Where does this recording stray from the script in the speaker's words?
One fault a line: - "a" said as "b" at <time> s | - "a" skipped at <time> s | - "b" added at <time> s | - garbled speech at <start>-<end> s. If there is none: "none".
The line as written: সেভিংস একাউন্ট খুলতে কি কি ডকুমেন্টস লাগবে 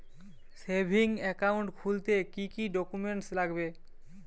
none